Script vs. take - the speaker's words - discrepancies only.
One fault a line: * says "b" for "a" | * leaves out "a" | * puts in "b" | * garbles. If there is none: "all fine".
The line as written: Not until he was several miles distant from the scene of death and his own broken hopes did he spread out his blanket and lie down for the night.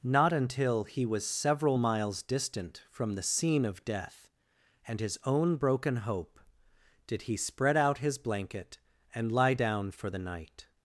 * says "hope" for "hopes"